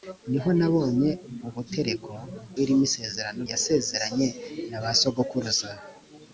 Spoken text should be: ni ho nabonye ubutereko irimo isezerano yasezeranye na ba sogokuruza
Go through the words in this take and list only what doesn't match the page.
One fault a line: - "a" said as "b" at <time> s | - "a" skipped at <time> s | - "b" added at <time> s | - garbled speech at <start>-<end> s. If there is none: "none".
none